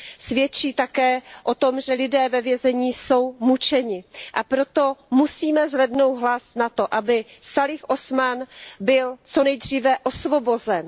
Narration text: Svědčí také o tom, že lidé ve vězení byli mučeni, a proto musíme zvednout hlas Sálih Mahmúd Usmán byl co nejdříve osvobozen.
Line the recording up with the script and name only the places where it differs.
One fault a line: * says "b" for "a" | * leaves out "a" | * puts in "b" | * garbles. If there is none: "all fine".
* says "jsou" for "byli"
* puts in "za to aby"